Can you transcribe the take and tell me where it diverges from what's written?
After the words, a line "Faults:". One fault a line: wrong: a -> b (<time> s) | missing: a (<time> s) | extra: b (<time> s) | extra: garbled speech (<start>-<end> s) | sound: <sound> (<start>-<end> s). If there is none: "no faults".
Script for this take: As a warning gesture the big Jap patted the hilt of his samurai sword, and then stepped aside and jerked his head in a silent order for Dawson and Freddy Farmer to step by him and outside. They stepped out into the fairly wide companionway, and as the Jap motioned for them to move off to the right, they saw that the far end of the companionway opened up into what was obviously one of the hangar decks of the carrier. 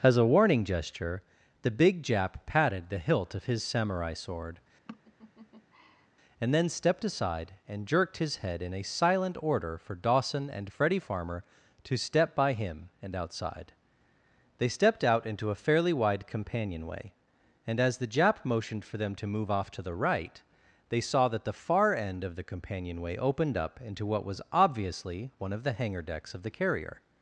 As a warning gesture the big Jap patted the hilt of his samurai sword, and then stepped aside and jerked his head in a silent order for Dawson and Freddy Farmer to step by him and outside. They stepped out into a fairly wide companionway, and as the Jap motioned for them to move off to the right, they saw that the far end of the companionway opened up into what was obviously one of the hangar decks of the carrier.
Faults:
sound: laugh (4.9-6.1 s)
wrong: the -> a (15.5 s)